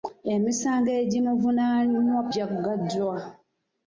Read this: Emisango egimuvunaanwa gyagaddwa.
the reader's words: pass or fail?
pass